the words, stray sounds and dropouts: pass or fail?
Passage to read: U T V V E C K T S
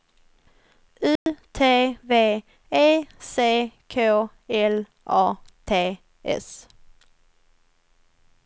fail